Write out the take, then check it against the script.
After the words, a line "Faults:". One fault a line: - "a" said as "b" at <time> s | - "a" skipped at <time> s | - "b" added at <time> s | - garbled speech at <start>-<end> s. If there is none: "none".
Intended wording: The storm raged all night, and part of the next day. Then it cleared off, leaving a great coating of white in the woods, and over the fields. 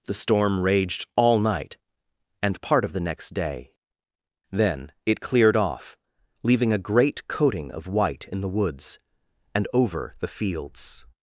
The storm raged all night, and part of the next day. Then it cleared off, leaving a great coating of white in the woods, and over the fields.
Faults:
none